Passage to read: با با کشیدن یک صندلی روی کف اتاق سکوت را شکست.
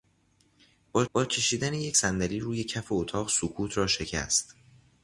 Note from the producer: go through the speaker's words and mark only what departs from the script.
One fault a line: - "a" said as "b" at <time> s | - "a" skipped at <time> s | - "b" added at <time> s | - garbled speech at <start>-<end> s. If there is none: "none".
none